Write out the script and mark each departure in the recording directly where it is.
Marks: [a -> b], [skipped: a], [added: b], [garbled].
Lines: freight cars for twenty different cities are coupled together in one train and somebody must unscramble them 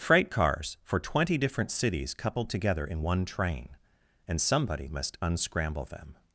freight cars for twenty different cities [skipped: are] coupled together in one train and somebody must unscramble them